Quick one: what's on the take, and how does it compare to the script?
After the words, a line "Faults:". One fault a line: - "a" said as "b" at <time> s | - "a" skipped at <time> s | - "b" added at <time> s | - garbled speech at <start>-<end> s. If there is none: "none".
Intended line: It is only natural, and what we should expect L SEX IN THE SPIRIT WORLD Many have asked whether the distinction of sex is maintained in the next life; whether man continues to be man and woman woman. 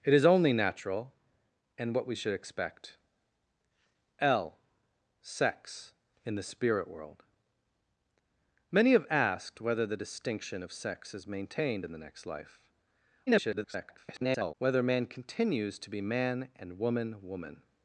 It is only natural, and what we should expect L SEX IN THE SPIRIT WORLD Many have asked whether the distinction of sex is maintained in the next life; [garbled] whether man continues to be man and woman woman.
Faults:
- garbled speech at 13.3-14.5 s